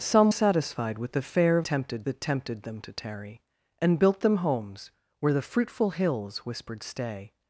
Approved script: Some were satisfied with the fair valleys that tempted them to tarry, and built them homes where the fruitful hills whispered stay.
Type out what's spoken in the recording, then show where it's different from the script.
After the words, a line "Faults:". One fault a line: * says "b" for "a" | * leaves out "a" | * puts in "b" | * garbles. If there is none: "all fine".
Some satisfied with the fair tempted that tempted them to tarry, and built them homes where the fruitful hills whispered stay.
Faults:
* leaves out "were"
* says "tempted" for "valleys"